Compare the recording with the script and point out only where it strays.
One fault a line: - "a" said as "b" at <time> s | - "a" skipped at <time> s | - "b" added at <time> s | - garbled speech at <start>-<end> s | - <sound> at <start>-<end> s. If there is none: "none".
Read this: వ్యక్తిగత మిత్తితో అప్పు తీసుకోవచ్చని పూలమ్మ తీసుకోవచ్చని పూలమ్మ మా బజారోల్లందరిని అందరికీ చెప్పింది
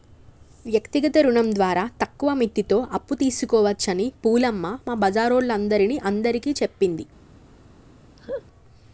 - "రుణం ద్వారా తక్కువ" added at 1.2 s
- "తీసుకోవచ్చని పూలమ్మ" skipped at 4.7 s
- laugh at 8.2-8.4 s